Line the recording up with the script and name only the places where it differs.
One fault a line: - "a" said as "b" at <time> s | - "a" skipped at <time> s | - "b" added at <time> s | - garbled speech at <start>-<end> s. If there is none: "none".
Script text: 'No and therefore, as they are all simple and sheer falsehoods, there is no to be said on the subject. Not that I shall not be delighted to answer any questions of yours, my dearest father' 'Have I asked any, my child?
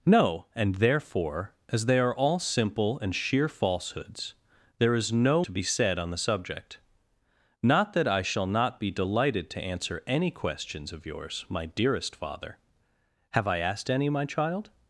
none